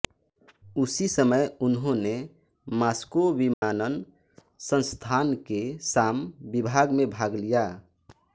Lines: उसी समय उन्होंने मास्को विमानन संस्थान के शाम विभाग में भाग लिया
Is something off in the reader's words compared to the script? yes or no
no